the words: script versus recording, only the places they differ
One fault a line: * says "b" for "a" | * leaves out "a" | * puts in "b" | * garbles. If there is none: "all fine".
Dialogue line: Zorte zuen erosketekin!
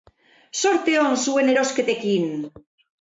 * puts in "on"